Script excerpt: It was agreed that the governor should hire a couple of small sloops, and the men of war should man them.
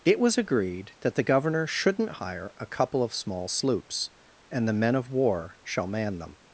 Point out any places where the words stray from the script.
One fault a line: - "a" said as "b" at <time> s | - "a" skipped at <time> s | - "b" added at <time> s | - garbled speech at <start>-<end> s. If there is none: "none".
- "should" said as "shouldn't" at 1.7 s
- "should" said as "shall" at 5.6 s